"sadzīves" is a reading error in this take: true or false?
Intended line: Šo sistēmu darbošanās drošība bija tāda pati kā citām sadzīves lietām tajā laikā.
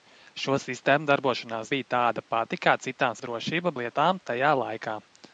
true